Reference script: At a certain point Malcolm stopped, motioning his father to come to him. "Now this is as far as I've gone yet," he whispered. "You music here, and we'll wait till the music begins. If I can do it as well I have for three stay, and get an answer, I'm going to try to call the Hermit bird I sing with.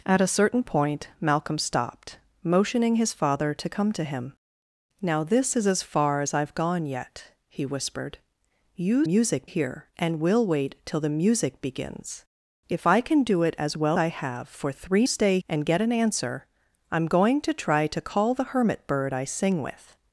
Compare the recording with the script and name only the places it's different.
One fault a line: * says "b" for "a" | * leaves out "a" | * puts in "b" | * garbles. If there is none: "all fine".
all fine